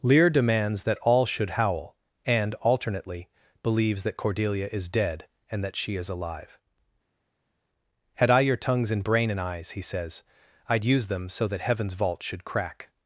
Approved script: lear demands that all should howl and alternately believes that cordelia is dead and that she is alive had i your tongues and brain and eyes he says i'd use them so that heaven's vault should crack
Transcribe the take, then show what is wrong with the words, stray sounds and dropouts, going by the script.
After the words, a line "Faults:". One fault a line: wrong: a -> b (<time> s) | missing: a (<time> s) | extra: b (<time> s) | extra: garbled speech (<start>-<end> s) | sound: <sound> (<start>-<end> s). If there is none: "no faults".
lear demands that all should howl and alternately believes that cordelia is dead and that she is alive had i your tongues and brain and eyes he says i'd use them so that heaven's vault should crack
Faults:
no faults